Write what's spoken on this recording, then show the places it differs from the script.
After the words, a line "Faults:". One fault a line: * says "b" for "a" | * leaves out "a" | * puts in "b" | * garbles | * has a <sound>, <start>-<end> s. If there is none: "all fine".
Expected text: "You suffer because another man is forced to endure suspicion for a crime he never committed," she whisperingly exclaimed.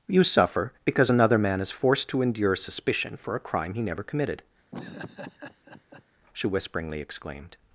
"You suffer because another man is forced to endure suspicion for a crime he never committed," she whisperingly exclaimed.
Faults:
* has a laugh, 4.7-6.0 s